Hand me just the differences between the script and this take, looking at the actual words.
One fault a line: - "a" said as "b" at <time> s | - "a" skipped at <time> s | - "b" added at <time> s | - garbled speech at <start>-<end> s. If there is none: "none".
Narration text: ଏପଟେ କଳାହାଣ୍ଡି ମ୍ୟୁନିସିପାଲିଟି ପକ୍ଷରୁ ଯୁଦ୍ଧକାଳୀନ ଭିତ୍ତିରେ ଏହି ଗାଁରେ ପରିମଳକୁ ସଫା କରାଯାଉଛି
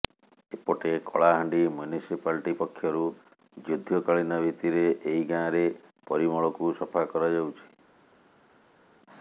none